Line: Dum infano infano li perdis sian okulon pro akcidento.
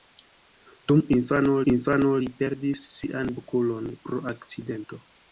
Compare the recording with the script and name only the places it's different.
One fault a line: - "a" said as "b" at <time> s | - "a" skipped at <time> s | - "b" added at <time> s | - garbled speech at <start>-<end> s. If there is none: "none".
none